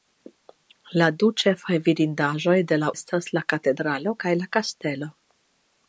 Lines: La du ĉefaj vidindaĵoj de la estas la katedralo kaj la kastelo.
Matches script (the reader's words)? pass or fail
pass